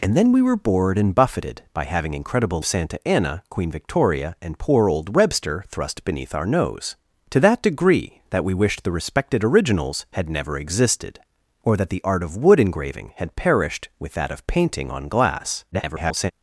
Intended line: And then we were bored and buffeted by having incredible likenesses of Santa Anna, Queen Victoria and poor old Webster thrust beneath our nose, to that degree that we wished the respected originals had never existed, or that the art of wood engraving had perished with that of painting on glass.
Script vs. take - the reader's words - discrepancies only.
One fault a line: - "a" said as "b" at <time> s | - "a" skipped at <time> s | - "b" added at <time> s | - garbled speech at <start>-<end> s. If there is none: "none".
- "likenesses of" skipped at 2.6 s
- garbled speech at 15.7-16.3 s